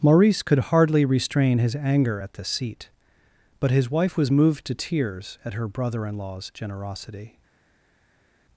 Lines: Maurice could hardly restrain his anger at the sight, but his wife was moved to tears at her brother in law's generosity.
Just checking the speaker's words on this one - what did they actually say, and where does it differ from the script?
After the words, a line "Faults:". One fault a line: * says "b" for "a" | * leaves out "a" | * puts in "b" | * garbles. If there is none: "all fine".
Maurice could hardly restrain his anger at the seat, but his wife was moved to tears at her brother in law's generosity.
Faults:
* says "seat" for "sight"